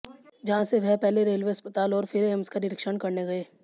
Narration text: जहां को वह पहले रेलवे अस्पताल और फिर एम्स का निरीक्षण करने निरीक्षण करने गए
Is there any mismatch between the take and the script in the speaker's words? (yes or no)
yes